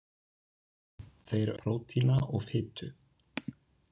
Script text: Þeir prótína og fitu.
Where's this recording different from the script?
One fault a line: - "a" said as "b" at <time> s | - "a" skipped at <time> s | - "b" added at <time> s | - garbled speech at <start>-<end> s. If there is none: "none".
none